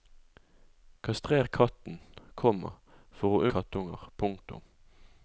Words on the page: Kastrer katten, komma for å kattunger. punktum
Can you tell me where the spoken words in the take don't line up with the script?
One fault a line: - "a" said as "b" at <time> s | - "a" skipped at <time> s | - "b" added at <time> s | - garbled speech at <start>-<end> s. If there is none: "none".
none